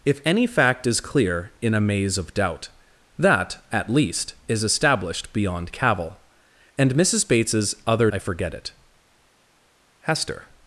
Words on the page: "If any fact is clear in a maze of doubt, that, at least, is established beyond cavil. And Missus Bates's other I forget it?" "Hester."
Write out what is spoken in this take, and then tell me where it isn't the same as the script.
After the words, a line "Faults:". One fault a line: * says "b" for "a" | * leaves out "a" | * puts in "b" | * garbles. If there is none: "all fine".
"If any fact is clear in a maze of doubt, that, at least, is established beyond cavil. And Missus Bates's other I forget it?" "Hester."
Faults:
all fine